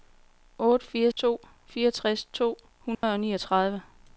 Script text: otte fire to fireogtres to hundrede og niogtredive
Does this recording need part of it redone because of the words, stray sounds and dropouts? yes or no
yes